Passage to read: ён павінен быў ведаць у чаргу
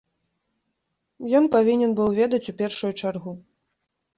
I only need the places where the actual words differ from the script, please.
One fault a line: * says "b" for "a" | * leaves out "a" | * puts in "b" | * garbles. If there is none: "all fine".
* puts in "першую"